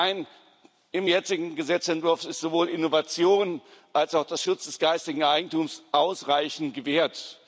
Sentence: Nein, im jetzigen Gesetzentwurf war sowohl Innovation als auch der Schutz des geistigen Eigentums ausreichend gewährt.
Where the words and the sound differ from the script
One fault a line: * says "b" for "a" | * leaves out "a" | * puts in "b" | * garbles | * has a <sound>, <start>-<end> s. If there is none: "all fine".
* says "ist" for "war"